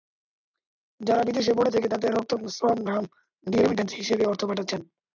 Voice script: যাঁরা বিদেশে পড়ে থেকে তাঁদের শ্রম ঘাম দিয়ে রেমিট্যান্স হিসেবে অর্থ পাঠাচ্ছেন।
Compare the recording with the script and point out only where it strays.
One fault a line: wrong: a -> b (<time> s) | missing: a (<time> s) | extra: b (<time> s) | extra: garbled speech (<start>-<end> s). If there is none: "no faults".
extra: রক্ত (2.1 s)